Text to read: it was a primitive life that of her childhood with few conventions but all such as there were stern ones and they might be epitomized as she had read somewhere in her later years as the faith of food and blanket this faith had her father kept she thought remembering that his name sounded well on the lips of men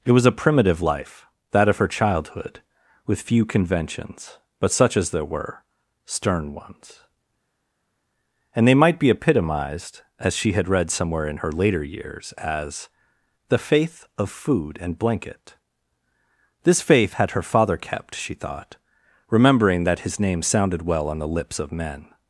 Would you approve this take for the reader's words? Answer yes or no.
no